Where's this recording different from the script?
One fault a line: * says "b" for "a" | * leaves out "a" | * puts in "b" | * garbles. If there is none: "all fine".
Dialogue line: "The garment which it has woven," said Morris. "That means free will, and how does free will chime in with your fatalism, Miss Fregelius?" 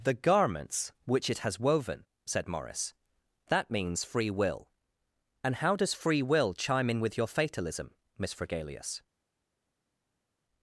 * says "garments" for "garment"